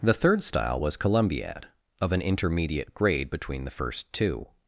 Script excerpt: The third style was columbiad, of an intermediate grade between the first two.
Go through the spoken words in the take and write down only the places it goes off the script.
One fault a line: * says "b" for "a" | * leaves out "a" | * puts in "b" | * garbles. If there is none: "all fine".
all fine